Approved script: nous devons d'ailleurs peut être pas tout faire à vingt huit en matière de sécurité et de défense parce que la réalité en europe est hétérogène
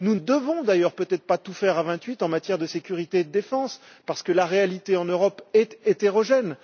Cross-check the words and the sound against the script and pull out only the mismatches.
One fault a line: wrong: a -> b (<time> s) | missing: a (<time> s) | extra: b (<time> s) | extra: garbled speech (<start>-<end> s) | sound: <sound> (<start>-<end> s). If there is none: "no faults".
no faults